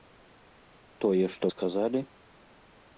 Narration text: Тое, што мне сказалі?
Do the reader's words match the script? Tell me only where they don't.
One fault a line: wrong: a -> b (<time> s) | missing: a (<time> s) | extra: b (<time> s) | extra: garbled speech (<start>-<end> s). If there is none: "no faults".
missing: мне (1.4 s)